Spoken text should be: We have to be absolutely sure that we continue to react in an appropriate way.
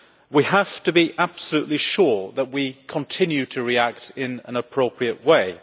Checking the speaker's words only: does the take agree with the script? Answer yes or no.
yes